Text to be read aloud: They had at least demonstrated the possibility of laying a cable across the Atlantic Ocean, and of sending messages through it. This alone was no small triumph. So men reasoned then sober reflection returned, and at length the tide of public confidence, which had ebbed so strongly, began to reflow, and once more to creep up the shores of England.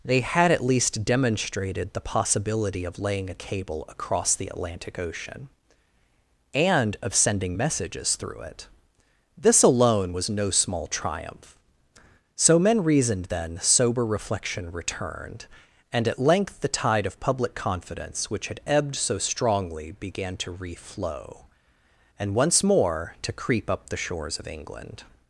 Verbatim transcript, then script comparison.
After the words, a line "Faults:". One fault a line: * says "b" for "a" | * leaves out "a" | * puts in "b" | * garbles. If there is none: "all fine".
They had at least demonstrated the possibility of laying a cable across the Atlantic Ocean, and of sending messages through it. This alone was no small triumph. So men reasoned then sober reflection returned, and at length the tide of public confidence, which had ebbed so strongly, began to reflow, and once more to creep up the shores of England.
Faults:
all fine